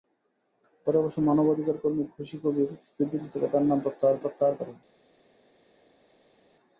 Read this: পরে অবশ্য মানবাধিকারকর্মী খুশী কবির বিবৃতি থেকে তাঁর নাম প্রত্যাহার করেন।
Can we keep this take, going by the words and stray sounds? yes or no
no